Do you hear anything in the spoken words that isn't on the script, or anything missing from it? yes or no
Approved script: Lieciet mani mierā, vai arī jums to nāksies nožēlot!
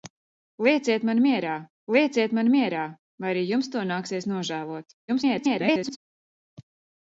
yes